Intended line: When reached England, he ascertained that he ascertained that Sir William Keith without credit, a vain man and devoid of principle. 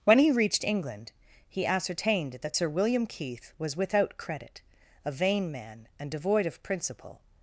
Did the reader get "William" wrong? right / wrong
right